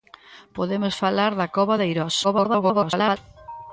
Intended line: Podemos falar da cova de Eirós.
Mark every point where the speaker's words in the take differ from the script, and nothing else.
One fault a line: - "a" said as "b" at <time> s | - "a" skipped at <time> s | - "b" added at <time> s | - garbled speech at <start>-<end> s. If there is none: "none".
- garbled speech at 2.2-3.2 s